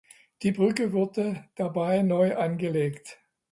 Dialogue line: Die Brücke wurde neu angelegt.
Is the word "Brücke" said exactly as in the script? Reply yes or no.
yes